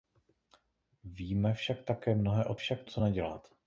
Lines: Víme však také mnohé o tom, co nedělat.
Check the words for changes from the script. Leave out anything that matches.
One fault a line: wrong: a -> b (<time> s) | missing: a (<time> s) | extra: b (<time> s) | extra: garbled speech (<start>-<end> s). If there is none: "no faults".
wrong: tom -> však (2.5 s)